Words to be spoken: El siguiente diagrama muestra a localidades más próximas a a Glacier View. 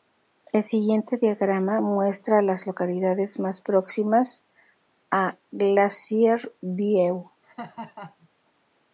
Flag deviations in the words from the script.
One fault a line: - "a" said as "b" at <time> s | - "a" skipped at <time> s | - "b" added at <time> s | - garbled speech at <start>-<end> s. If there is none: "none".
- "las" added at 2.4 s
- "a" skipped at 5.4 s